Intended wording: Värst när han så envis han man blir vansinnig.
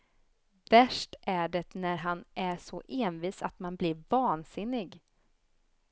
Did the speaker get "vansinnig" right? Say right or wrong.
right